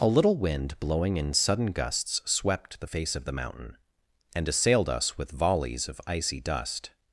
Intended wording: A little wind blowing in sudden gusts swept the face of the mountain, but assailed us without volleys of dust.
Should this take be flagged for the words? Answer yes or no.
yes